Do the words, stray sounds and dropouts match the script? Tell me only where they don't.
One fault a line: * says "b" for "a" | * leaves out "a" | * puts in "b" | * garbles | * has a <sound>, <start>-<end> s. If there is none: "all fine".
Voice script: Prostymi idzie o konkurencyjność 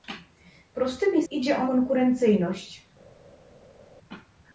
all fine